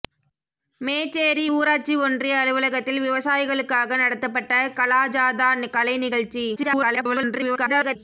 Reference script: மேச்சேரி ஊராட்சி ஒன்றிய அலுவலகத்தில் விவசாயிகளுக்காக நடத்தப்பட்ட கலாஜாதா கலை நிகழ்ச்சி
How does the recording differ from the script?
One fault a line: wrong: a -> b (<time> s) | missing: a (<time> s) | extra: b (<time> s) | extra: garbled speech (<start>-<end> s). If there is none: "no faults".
extra: garbled speech (6.6-8.0 s)